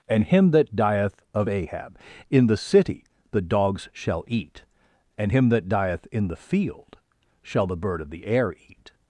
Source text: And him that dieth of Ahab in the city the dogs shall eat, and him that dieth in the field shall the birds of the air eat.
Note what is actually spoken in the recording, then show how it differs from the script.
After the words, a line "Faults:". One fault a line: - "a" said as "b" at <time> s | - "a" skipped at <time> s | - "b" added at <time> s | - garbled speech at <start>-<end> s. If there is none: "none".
And him that dieth of Ahab in the city the dogs shall eat, and him that dieth in the field shall the bird of the air eat.
Faults:
- "birds" said as "bird" at 7.8 s